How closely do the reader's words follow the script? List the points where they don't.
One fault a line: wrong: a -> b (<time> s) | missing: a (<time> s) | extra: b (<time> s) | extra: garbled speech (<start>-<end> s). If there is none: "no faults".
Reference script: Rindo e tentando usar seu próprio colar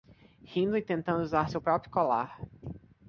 no faults